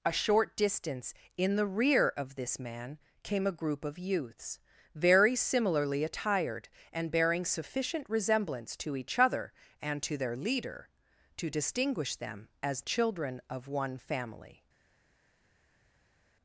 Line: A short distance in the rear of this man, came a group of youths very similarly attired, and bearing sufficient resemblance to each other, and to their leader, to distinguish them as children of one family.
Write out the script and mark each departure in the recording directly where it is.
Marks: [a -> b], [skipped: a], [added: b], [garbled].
A short distance in the rear of this man, came a group of youths very similarly attired, and bearing sufficient resemblance to each other, and to their leader, to distinguish them as children of one family.